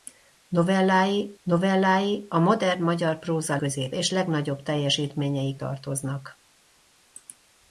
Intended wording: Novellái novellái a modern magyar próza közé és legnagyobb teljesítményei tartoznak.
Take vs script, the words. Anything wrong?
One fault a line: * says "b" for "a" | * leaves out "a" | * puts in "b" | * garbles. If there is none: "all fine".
all fine